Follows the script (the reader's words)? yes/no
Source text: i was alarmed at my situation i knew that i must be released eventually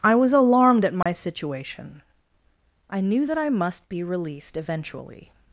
yes